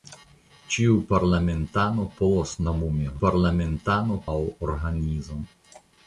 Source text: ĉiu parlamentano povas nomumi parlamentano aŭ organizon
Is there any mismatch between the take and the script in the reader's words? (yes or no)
no